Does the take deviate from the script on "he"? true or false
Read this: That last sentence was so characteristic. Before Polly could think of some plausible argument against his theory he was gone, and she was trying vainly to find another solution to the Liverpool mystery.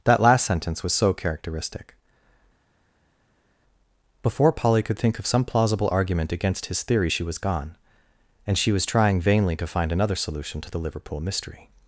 true